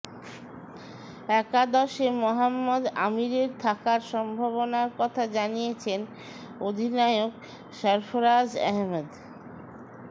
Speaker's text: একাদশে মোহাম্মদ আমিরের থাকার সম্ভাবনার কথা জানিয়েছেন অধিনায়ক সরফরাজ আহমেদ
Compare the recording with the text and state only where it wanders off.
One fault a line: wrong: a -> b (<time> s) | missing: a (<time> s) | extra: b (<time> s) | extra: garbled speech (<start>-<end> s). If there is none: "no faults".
no faults